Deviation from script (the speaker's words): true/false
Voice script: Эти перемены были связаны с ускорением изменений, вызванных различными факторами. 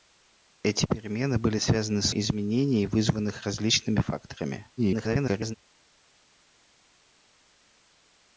true